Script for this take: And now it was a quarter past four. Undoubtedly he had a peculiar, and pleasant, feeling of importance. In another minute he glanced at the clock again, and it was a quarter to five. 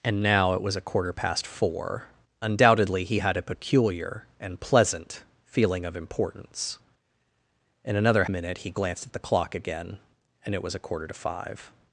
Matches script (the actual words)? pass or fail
pass